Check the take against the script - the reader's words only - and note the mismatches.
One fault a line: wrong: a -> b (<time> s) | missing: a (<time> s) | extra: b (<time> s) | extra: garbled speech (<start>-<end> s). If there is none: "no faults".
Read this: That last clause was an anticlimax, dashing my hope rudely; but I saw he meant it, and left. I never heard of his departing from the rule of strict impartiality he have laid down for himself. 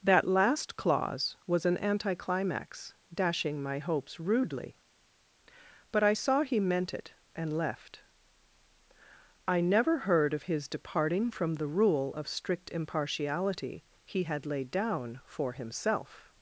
wrong: hope -> hopes (3.8 s)
wrong: have -> had (14.2 s)